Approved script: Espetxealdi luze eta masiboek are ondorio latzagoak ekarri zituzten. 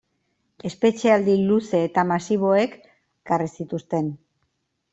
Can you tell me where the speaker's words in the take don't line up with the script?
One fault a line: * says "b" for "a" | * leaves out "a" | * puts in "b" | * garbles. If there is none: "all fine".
* leaves out "are ondorio latzagoak"